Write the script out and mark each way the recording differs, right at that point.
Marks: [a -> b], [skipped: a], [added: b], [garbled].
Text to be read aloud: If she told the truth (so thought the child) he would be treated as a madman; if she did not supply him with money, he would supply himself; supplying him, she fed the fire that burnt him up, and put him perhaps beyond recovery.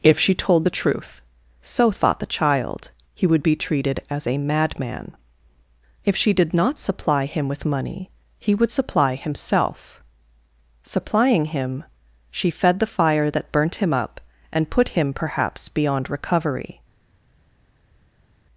If she told the truth (so thought the child) he would be treated as a madman; if she did not supply him with money, he would supply himself; supplying him, she fed the fire that burnt him up, and put him perhaps beyond recovery.